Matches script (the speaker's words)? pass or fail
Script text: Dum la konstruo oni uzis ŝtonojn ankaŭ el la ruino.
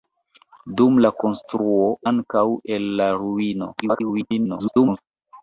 fail